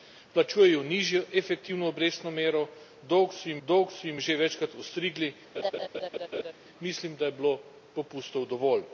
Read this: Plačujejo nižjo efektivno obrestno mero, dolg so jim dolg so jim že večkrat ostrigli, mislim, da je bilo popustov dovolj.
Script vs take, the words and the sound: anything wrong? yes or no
yes